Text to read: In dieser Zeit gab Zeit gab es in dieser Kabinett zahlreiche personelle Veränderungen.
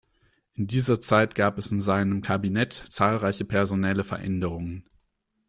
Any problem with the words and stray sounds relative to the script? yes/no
yes